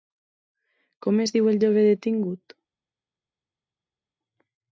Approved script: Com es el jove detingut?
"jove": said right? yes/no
yes